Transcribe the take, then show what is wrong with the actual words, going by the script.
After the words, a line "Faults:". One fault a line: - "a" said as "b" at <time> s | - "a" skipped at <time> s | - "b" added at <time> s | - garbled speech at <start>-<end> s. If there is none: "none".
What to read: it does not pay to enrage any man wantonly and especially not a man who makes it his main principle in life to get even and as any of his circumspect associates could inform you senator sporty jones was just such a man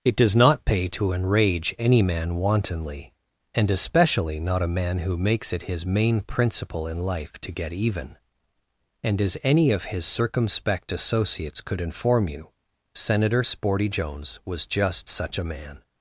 it does not pay to enrage any man wantonly and especially not a man who makes it his main principle in life to get even and as any of his circumspect associates could inform you senator sporty jones was just such a man
Faults:
none